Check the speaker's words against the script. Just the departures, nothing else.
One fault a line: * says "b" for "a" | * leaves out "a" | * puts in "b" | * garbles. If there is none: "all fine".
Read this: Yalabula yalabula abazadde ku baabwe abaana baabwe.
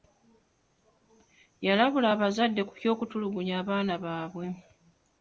* leaves out "yalabula"
* says "ky'okutulugunya" for "baabwe"